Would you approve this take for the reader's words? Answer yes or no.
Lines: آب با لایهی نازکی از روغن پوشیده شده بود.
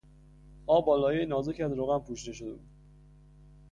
yes